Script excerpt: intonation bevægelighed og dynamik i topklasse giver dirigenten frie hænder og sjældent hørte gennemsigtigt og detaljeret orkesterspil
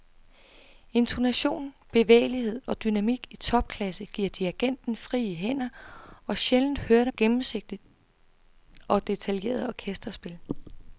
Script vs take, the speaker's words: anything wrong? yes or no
no